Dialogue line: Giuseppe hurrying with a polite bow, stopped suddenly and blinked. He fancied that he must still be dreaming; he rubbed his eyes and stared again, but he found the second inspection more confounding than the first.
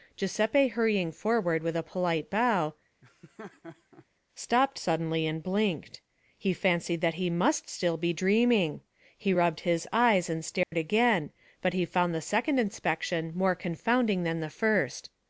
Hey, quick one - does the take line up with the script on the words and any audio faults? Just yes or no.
no